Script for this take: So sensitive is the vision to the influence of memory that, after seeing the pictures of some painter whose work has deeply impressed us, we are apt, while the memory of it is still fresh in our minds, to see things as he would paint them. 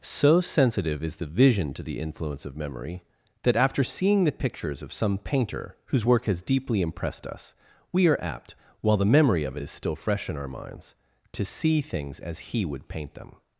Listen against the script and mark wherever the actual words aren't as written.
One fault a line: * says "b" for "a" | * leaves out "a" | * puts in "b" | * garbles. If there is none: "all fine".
all fine